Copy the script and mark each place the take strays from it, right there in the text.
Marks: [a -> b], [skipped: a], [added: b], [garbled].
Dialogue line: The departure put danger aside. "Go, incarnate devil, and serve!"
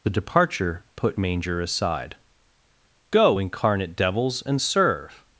The departure put [danger -> manger] aside. "Go, incarnate [devil, -> devils] and serve!"